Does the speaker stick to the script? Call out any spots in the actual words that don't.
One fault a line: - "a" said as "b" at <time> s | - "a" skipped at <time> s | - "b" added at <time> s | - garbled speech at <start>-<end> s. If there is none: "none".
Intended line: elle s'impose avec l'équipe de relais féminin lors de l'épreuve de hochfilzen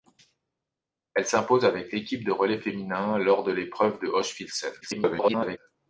- garbled speech at 4.8-5.6 s